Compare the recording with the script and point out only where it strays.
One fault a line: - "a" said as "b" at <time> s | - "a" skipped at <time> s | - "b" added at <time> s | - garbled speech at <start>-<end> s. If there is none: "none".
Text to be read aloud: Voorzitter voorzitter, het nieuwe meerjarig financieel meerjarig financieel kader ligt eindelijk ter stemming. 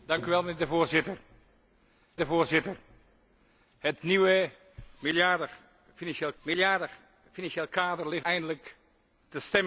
none